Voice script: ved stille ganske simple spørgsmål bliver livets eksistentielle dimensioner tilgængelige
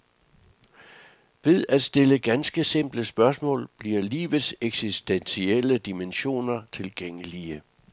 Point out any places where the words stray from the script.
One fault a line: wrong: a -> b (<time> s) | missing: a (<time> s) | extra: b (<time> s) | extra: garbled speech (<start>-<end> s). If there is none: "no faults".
extra: at (1.7 s)